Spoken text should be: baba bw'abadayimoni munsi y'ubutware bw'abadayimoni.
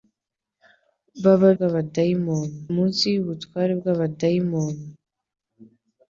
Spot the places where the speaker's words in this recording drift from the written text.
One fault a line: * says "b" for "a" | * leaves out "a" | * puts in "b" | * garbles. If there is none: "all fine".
all fine